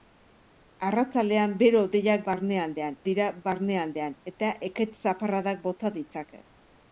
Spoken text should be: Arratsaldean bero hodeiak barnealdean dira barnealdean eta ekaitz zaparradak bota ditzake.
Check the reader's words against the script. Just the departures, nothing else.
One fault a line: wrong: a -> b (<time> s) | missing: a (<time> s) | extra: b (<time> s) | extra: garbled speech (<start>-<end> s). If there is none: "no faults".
no faults